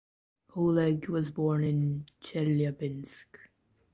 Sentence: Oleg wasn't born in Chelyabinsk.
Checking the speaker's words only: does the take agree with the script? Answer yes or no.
no